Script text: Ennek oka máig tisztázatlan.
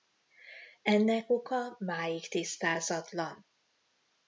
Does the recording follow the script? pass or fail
pass